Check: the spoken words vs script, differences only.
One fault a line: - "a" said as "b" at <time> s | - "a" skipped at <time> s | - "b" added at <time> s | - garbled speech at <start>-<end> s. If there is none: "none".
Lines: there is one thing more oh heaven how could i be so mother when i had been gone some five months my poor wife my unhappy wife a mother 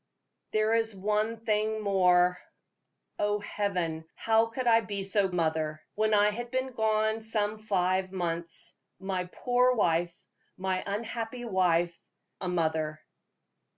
none